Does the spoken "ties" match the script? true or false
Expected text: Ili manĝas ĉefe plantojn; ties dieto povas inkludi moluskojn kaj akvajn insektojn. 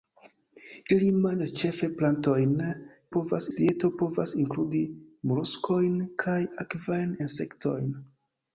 false